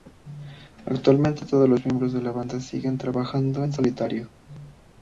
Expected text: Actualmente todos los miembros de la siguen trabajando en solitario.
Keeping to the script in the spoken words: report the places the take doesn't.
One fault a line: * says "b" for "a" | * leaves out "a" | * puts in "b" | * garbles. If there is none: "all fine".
* puts in "banda"